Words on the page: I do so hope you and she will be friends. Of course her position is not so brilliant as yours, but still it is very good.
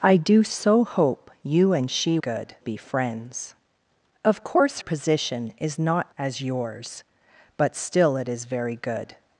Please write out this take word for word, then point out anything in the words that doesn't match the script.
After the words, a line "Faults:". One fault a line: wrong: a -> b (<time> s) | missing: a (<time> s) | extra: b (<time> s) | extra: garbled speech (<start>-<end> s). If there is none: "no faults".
I do so hope you and she good be friends. Of course position is not as yours, but still it is very good.
Faults:
wrong: will -> good (2.2 s)
missing: her (4.8 s)
missing: so brilliant (6.1 s)